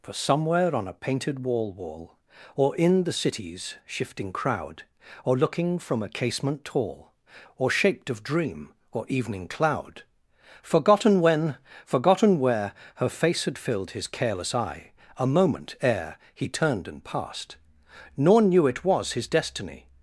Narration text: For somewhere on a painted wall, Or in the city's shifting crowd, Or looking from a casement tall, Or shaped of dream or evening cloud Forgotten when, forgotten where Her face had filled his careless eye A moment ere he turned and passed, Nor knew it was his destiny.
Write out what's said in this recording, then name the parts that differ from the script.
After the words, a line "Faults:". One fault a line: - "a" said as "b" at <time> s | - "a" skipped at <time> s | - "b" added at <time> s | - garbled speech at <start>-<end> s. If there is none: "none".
For somewhere on a painted wall wall, Or in the city's shifting crowd, Or looking from a casement tall, Or shaped of dream or evening cloud Forgotten when, forgotten where Her face had filled his careless eye A moment ere he turned and passed, Nor knew it was his destiny.
Faults:
- "wall" added at 1.7 s